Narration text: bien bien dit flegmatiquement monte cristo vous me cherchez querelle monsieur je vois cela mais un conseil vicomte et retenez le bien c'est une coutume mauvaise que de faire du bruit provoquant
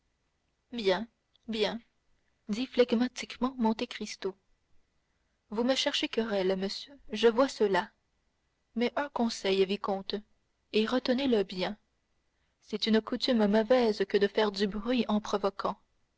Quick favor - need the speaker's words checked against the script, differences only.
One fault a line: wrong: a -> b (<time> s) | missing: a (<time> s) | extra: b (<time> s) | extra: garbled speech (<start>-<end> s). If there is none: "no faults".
extra: en (15.1 s)